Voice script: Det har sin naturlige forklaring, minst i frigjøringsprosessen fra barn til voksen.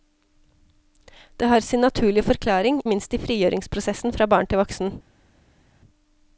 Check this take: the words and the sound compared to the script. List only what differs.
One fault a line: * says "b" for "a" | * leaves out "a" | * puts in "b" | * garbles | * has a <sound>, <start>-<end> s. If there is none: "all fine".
all fine